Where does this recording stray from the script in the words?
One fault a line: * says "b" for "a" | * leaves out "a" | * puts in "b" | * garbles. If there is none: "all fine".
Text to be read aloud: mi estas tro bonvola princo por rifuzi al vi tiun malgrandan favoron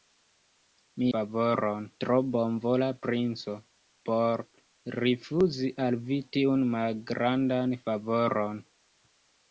* says "favoron" for "estas"